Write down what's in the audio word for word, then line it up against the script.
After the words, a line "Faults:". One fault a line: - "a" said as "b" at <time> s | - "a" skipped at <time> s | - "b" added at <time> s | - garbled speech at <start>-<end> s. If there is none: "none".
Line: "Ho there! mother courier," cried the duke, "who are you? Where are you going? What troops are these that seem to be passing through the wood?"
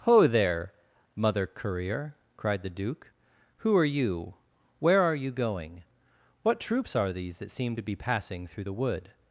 "Ho there! mother courier," cried the duke, "who are you? Where are you going? What troops are these that seem to be passing through the wood?"
Faults:
none